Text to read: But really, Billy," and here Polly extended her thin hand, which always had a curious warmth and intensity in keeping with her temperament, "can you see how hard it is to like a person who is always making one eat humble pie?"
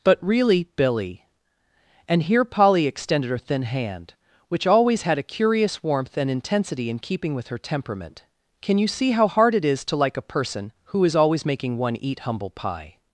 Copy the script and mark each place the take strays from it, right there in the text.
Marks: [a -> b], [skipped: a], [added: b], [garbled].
But really, Billy," and here Polly extended her thin hand, which always had a curious warmth and intensity in keeping with her temperament, "can you see how hard it is to like a person who is always making one eat humble pie?"